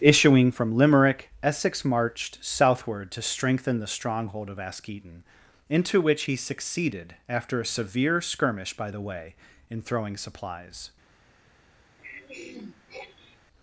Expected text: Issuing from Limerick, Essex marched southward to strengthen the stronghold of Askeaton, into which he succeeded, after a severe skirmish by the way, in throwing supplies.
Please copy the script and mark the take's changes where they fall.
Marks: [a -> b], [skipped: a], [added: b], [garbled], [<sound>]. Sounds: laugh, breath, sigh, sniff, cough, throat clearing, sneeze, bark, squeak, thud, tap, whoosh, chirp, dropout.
Issuing from Limerick, Essex marched southward to strengthen the stronghold of Askeaton, into which he succeeded, after a severe skirmish by the way, in throwing supplies. [throat clearing]